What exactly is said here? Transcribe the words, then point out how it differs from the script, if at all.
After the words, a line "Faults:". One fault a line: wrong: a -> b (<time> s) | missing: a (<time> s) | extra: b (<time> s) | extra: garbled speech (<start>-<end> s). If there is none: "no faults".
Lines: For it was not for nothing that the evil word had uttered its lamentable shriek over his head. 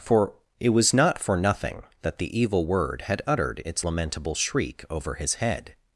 For it was not for nothing that the evil word had uttered its lamentable shriek over his head.
Faults:
no faults